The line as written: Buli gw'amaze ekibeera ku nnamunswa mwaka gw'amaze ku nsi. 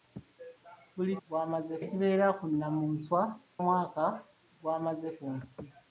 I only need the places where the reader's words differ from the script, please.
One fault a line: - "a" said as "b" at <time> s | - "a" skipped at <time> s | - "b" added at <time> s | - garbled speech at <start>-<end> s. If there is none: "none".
none